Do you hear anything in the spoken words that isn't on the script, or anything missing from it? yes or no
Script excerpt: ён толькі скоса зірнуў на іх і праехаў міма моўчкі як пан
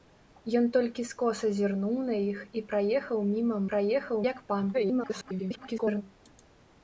yes